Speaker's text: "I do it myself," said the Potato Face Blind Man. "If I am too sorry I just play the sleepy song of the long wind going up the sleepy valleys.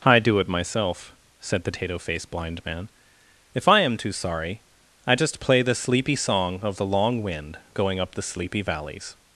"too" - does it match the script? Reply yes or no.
yes